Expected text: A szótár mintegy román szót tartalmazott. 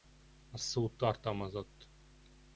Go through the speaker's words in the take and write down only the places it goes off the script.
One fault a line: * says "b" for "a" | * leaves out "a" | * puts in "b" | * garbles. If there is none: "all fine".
* leaves out "szótár mintegy román"